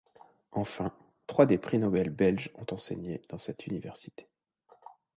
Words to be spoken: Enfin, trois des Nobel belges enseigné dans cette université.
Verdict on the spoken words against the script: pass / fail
fail